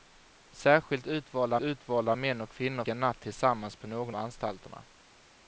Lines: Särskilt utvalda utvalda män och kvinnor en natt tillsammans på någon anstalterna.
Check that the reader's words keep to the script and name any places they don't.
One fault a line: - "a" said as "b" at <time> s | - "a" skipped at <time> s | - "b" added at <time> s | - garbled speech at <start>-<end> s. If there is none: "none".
none